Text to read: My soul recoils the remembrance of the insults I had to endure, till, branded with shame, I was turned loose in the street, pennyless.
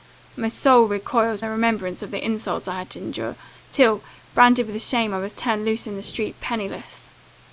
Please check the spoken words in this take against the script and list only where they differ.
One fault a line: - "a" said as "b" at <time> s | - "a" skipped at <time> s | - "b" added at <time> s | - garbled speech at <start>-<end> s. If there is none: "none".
none